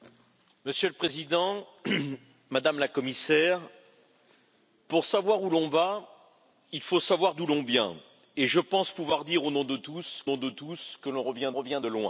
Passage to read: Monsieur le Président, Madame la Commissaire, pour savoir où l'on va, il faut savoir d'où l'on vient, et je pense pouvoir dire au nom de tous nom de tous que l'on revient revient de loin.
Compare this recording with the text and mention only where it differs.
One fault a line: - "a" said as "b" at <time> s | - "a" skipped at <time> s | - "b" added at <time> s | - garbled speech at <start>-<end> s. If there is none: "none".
none